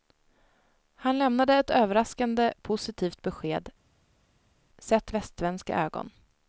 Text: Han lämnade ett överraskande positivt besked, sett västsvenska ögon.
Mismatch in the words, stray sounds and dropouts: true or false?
false